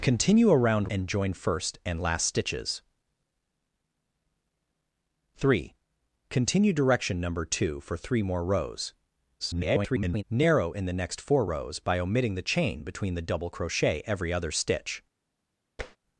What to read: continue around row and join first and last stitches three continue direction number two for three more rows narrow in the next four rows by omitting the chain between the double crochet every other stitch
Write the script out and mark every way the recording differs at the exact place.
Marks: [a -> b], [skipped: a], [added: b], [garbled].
continue around [skipped: row] and join first and last stitches three continue direction number two for three more rows [garbled] narrow in the next four rows by omitting the chain between the double crochet every other stitch